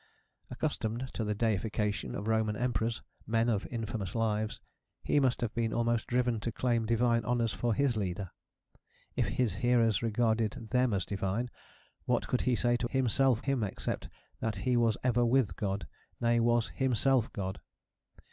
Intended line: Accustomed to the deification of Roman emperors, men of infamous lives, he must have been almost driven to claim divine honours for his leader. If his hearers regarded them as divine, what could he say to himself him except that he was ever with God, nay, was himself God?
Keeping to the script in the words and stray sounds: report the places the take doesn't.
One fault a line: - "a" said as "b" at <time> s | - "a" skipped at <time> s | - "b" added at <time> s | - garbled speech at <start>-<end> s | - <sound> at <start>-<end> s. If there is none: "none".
none